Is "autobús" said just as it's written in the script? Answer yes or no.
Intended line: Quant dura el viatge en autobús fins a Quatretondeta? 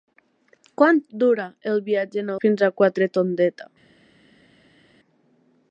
no